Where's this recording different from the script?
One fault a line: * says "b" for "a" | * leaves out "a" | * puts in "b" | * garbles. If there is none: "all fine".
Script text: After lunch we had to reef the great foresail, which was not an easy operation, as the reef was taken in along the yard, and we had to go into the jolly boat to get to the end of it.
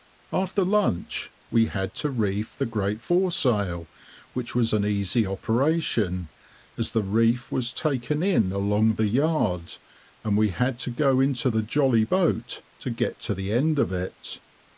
* leaves out "not"